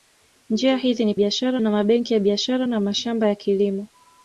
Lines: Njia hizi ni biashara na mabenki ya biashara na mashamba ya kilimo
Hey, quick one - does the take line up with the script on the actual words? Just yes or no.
yes